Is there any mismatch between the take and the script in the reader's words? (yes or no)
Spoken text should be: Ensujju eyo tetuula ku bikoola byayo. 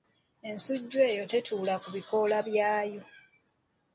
no